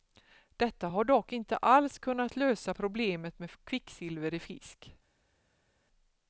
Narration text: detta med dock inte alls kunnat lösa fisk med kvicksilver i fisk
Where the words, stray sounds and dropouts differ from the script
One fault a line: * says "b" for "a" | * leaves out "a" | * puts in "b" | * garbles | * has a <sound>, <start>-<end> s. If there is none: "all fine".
* says "har" for "med"
* says "problemet" for "fisk"